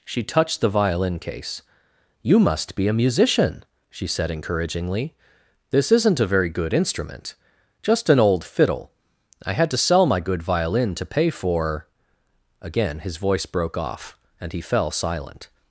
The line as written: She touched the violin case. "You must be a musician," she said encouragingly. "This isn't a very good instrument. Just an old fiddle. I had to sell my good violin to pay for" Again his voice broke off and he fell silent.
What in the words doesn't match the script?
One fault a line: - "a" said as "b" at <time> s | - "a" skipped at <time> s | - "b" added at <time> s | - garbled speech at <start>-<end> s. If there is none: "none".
none